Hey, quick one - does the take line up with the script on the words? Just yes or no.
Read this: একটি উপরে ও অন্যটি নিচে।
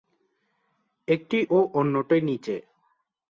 no